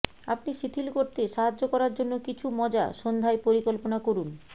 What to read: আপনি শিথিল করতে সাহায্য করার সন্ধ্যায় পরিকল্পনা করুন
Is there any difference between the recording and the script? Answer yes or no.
yes